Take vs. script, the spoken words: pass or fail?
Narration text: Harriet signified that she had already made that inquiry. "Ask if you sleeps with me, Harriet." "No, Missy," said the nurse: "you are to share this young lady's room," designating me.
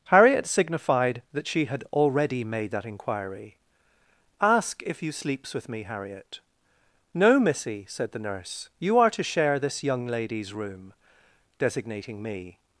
pass